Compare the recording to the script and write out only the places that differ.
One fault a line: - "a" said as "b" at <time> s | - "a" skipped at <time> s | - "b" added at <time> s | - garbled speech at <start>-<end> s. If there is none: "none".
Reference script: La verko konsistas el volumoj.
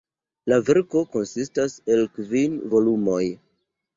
- "kvin" added at 2.1 s